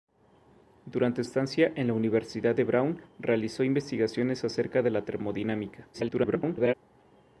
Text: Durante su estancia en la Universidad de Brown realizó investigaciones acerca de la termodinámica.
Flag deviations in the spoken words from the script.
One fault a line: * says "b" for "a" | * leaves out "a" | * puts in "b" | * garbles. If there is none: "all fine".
* leaves out "su"
* garbles